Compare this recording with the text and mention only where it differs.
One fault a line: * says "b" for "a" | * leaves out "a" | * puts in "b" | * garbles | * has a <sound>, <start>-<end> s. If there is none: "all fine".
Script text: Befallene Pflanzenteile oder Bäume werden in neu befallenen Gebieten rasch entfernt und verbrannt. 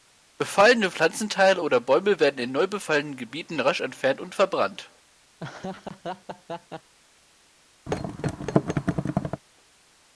* has a laugh, 5.4-6.9 s
* has a thud, 7.9-9.4 s